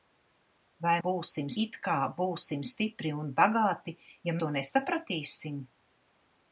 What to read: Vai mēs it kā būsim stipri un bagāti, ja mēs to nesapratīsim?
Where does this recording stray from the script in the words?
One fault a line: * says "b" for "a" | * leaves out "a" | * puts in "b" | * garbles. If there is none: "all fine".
* says "būsim" for "mēs"
* leaves out "mēs"